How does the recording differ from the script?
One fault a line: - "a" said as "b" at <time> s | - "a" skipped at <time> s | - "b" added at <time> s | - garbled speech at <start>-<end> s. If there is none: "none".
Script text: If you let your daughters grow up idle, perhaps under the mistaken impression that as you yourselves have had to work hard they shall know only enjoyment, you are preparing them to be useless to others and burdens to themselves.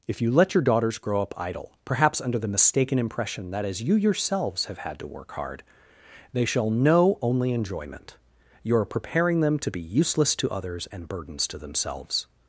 none